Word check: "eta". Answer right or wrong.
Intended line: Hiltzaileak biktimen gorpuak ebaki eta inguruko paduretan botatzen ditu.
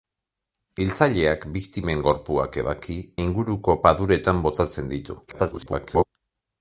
wrong